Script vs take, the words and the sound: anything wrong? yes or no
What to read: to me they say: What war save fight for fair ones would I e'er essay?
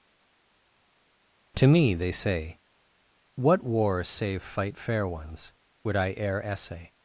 yes